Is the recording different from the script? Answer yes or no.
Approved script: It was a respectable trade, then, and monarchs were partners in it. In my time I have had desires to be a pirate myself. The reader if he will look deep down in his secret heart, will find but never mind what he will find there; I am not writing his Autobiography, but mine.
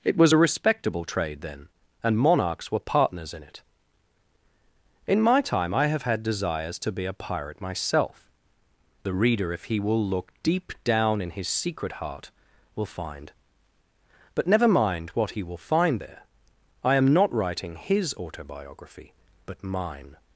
no